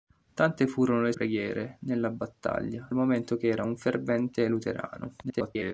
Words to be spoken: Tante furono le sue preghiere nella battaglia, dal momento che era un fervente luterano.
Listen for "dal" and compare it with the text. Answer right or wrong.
wrong